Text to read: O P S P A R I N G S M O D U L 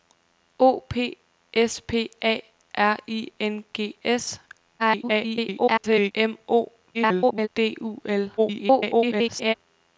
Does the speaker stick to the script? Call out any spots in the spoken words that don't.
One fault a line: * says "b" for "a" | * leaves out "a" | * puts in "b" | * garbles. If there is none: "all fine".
* garbles
* garbles
* garbles